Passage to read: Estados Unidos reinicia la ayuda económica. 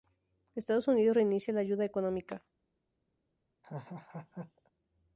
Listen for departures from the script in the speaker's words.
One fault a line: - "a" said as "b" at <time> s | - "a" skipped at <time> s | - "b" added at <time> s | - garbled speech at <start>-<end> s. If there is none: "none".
none